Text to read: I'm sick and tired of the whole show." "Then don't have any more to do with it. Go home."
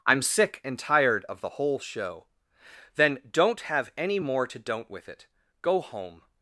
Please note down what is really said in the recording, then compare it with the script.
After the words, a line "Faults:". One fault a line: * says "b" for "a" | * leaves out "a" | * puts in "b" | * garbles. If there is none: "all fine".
I'm sick and tired of the whole show." "Then don't have any more to don't with it. Go home."
Faults:
* says "don't" for "do"